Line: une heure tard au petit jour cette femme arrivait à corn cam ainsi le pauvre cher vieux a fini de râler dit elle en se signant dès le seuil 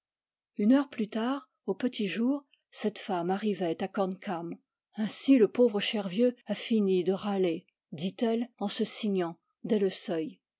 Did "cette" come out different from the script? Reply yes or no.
no